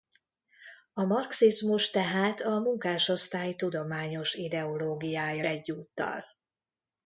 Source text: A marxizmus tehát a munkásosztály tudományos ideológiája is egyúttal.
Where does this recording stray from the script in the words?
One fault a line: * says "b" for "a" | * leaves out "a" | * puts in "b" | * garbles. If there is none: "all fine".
* leaves out "is"